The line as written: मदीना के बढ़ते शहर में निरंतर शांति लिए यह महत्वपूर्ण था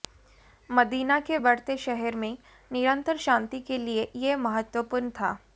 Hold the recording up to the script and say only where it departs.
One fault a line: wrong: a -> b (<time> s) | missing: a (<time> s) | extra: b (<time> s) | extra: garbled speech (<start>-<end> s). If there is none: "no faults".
extra: के (3.6 s)